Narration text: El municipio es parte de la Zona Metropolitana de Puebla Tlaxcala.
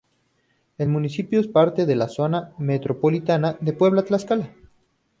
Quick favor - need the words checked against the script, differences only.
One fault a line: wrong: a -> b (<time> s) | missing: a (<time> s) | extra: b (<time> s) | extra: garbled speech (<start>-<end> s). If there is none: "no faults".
no faults